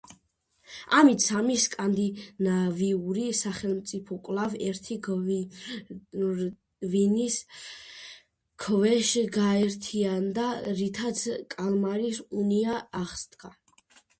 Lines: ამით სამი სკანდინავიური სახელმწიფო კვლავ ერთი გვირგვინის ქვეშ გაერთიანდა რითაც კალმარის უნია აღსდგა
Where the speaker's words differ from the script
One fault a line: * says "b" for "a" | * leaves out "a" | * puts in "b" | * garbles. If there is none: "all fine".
all fine